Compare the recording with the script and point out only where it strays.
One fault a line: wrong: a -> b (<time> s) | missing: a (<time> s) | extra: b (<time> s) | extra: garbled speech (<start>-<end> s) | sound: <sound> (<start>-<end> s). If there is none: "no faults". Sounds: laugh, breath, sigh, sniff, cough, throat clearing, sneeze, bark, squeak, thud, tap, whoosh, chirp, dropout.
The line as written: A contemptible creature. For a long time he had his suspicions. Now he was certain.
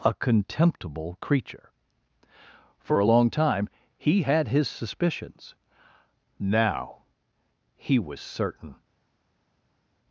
no faults